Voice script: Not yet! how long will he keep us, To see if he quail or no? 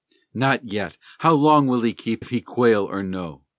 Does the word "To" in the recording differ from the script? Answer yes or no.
yes